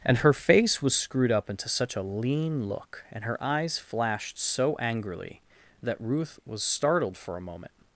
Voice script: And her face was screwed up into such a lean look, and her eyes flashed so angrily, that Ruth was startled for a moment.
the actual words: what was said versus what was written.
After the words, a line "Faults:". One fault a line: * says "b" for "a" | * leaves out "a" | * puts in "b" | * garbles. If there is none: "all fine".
And her face was screwed up into such a lean look, and her eyes flashed so angrily, that Ruth was startled for a moment.
Faults:
all fine